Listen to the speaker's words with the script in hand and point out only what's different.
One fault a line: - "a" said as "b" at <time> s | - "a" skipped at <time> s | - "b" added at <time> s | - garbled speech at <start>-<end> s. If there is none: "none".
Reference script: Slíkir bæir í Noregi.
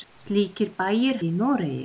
none